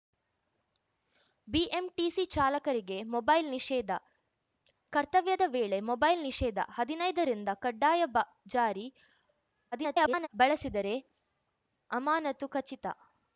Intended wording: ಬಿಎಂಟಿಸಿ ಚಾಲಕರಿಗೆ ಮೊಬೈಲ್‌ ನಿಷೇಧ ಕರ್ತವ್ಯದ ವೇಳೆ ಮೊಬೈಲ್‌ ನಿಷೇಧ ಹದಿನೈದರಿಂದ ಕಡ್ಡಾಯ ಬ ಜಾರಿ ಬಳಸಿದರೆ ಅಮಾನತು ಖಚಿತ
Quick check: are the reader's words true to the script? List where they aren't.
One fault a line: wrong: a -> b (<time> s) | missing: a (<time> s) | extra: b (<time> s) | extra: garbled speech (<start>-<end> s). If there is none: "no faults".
extra: garbled speech (9.7-10.3 s)